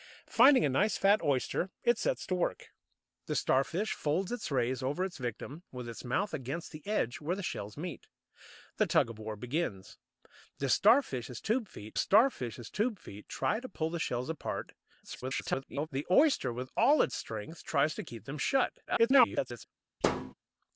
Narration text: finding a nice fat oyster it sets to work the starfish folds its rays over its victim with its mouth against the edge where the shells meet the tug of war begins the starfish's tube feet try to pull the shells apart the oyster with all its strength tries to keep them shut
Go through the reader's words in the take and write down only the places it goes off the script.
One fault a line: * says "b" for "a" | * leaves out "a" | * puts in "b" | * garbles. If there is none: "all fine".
* puts in "starfish's tube feet"
* garbles
* garbles